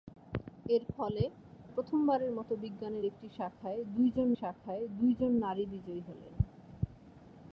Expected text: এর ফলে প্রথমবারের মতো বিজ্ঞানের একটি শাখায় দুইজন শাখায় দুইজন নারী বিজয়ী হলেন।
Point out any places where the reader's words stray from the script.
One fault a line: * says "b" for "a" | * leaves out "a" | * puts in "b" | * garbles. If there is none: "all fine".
all fine